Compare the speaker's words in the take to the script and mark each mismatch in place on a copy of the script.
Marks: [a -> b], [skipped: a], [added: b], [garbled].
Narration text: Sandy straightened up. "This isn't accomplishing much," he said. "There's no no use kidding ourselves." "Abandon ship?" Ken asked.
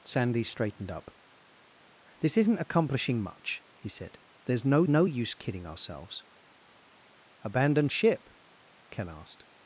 Sandy straightened up. "This isn't accomplishing much," he said. "There's no no use kidding ourselves." "Abandon ship?" Ken asked.